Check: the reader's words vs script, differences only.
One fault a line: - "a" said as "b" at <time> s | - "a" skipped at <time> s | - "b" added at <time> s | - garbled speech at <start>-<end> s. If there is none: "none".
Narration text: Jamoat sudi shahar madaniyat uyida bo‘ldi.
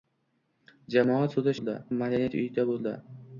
- "shahar" said as "bo‘ldi" at 1.6 s